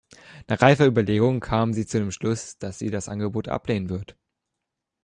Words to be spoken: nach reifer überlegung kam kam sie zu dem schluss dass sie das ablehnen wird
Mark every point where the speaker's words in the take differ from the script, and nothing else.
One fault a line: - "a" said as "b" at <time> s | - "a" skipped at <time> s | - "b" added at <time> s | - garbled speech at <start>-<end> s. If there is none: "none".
- "kam" skipped at 1.7 s
- "angebot" added at 3.1 s